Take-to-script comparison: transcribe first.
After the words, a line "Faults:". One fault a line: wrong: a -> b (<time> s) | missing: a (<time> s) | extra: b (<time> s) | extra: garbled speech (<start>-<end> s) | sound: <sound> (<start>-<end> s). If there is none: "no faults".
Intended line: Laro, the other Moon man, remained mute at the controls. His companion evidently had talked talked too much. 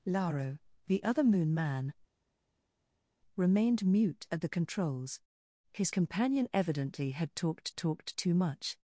Laro, the other Moon man, remained mute at the controls. His companion evidently had talked talked too much.
Faults:
no faults